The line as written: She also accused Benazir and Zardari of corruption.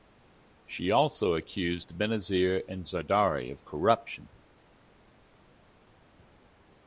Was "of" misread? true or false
false